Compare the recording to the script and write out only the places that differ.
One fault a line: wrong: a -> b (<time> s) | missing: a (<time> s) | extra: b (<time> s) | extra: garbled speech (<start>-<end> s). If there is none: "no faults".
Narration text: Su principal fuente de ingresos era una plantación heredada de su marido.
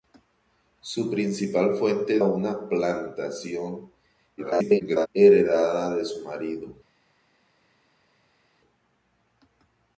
missing: de ingresos era (2.2 s)
extra: garbled speech (4.4-5.1 s)